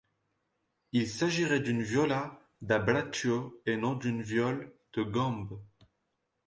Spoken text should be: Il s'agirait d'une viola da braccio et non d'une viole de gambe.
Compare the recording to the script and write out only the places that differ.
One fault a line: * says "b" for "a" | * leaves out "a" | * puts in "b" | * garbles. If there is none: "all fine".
all fine